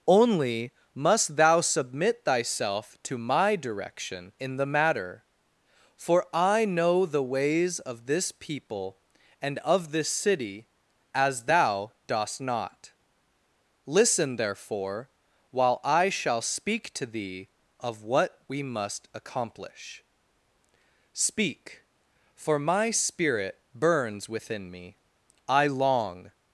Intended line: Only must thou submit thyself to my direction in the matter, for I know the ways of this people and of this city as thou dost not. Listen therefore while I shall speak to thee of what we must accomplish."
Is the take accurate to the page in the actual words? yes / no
no